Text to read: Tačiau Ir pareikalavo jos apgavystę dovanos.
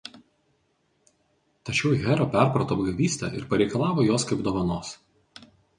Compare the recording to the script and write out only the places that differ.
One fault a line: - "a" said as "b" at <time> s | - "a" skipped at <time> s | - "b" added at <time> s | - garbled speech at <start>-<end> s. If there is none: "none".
- "Hera perprato apgavystę" added at 2.0 s
- "apgavystę" said as "kaip" at 4.3 s